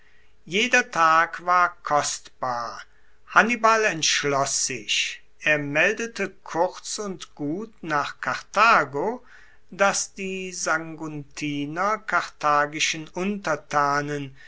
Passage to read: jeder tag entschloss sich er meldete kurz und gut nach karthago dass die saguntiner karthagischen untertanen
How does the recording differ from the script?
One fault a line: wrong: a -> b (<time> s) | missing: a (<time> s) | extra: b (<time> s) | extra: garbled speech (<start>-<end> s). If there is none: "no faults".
extra: war kostbar hannibal (1.4 s)